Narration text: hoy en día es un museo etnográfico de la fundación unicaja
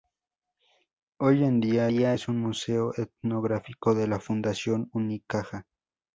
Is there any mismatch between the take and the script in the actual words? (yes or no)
yes